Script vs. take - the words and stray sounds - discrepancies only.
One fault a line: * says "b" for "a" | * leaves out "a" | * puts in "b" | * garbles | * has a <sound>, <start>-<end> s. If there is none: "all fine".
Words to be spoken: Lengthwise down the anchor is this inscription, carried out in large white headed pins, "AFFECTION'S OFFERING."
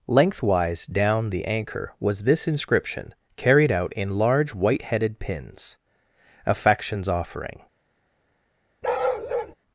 * says "was" for "is"
* has a bark, 8.8-9.6 s